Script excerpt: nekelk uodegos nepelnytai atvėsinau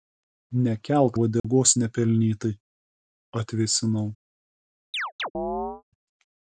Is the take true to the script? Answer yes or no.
yes